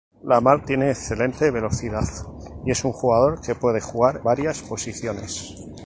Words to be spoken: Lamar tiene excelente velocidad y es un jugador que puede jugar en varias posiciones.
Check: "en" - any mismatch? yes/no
yes